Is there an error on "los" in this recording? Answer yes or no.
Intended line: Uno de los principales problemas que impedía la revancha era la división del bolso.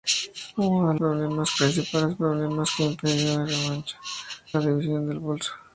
yes